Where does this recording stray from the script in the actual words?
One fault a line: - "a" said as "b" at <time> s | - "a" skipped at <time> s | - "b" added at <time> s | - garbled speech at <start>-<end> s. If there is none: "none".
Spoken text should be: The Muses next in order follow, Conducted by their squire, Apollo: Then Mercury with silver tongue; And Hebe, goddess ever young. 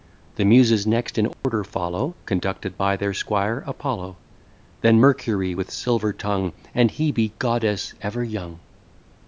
none